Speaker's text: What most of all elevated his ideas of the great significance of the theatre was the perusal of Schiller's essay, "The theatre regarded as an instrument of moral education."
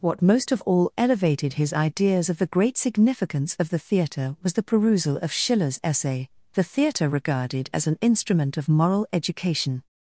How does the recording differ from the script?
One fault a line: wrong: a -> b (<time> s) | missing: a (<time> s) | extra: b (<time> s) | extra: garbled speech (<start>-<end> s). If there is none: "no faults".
no faults